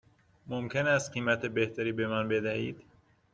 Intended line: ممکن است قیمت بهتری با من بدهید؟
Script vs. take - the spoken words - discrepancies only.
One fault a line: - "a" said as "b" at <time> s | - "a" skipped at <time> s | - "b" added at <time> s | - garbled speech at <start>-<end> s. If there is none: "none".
- "با" said as "به" at 1.9 s